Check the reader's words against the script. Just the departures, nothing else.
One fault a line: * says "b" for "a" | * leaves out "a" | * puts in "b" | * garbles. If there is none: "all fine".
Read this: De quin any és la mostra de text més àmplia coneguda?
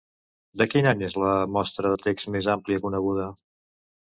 all fine